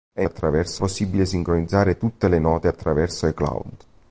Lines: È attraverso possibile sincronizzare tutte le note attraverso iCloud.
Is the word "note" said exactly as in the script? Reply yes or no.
yes